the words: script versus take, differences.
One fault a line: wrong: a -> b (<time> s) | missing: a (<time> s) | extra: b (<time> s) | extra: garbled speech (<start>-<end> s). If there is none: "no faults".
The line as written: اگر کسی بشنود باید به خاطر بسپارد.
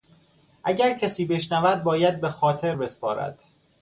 no faults